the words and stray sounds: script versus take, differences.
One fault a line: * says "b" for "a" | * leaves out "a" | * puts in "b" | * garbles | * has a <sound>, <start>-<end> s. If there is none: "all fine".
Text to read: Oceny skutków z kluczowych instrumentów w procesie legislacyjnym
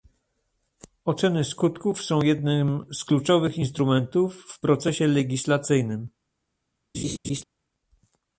* puts in "są jednym"
* has a laugh, 6.9-7.4 s